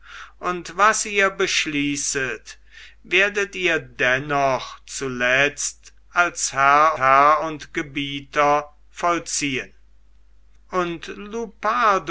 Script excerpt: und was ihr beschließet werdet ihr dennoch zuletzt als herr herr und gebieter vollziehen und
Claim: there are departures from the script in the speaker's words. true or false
false